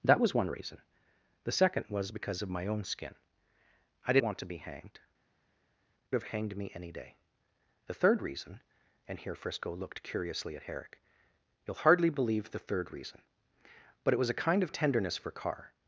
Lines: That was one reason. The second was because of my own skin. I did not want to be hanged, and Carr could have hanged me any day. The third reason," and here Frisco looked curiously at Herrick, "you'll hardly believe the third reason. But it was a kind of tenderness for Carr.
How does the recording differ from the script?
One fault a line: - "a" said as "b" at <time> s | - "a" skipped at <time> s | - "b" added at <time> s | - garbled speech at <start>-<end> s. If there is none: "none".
- "not" skipped at 4.2 s
- "and Carr could" skipped at 5.0 s